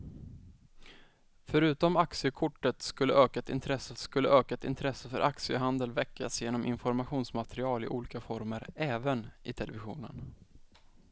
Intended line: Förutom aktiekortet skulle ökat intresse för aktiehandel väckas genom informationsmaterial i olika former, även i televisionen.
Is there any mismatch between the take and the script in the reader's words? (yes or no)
yes